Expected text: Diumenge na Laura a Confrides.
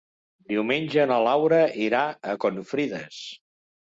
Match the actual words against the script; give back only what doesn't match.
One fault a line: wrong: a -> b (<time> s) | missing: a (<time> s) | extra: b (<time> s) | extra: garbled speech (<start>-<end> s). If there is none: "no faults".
extra: irà (1.9 s)